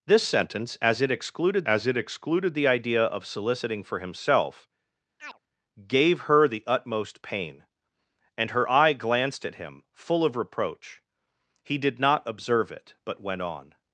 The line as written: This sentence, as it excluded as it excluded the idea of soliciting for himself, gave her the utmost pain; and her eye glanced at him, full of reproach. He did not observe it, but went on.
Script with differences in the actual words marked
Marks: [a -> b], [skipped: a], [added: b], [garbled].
This sentence, as it excluded as it excluded the idea of soliciting for himself, gave her the utmost pain; and her eye glanced at him, full of reproach. He did not observe it, but went on.